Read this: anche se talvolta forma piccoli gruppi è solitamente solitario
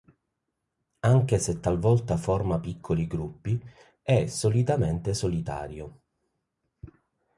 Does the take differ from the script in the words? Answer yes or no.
no